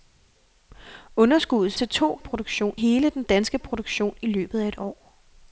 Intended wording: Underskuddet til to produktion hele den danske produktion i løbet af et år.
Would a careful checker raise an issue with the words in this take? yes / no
no